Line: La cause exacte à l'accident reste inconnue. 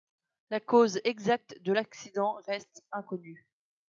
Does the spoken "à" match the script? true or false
false